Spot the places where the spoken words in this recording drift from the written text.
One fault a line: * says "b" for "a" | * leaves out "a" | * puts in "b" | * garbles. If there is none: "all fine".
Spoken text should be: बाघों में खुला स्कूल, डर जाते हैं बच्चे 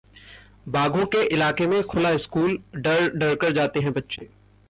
* puts in "के इलाके"
* puts in "डर कर"